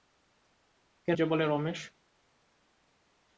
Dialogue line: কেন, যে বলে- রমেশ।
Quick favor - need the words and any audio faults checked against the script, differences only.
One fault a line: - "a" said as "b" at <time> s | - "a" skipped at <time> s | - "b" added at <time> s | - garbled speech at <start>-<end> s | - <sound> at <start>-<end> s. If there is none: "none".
none